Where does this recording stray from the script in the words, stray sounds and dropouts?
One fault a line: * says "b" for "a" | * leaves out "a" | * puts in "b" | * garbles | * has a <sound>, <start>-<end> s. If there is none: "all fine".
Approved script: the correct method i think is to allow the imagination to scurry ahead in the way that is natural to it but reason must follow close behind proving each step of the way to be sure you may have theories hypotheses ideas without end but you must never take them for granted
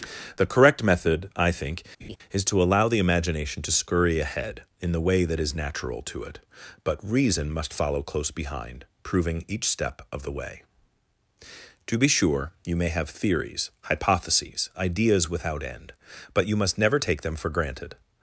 * has a laugh, 2.0-2.2 s